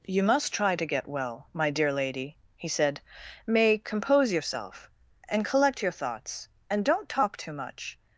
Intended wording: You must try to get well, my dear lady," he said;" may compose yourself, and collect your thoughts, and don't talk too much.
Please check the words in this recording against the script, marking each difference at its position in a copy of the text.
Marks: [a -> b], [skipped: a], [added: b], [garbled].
You must try to get well, my dear lady," he said;" may compose yourself, and collect your thoughts, and don't talk too much.